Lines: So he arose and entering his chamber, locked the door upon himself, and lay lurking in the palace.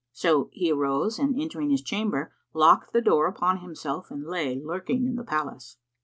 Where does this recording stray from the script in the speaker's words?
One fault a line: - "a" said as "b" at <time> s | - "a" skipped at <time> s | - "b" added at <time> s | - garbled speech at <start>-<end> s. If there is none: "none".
none